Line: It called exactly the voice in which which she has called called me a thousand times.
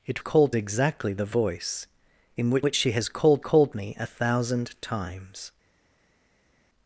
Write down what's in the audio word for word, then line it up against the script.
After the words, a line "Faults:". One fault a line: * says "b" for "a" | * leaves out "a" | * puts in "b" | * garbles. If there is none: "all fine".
It called exactly the voice in which which she has called called me a thousand times.
Faults:
all fine